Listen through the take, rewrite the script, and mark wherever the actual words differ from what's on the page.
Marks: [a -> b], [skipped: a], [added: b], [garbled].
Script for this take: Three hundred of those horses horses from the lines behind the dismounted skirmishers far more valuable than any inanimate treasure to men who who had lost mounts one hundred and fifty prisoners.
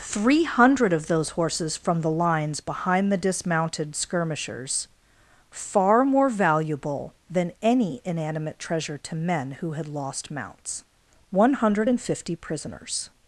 Three hundred of those horses [skipped: horses] from the lines behind the dismounted skirmishers far more valuable than any inanimate treasure to men who [skipped: who] had lost mounts one hundred and fifty prisoners.